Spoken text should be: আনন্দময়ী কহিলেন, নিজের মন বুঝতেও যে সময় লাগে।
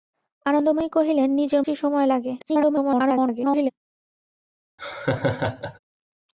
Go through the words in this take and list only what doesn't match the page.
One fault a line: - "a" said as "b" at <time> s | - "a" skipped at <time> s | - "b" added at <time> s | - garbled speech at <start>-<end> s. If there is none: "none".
- "মন বুঝতেও" skipped at 1.6 s
- garbled speech at 2.4-3.7 s